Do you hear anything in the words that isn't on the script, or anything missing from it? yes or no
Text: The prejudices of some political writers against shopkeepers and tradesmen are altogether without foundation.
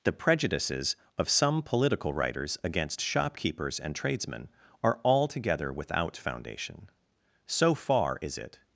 yes